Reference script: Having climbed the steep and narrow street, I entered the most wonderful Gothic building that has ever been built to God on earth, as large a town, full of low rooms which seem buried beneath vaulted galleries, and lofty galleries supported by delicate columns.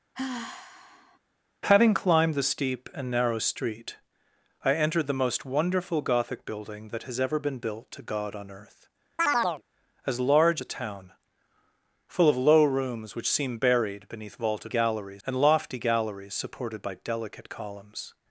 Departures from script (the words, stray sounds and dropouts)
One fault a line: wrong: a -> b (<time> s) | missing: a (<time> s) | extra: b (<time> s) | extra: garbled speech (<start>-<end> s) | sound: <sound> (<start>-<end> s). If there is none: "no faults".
sound: sigh (0.1-1.2 s)
sound: chirp (9.2-9.6 s)